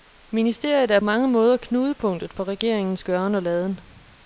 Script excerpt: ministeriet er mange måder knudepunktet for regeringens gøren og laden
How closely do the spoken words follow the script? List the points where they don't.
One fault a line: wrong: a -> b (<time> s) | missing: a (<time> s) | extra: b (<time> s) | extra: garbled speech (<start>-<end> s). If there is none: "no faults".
no faults